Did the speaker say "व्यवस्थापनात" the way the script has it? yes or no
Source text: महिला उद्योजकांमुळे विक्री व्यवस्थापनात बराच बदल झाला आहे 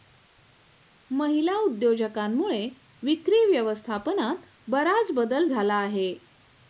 yes